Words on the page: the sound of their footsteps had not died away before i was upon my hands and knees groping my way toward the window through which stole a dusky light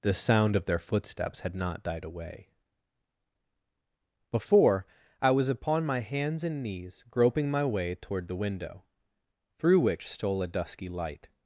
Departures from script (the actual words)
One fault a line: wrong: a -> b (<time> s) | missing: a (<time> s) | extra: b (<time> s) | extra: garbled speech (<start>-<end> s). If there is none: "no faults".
no faults